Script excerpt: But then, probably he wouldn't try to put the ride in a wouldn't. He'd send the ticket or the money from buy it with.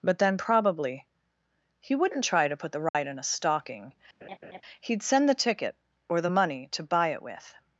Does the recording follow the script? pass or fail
fail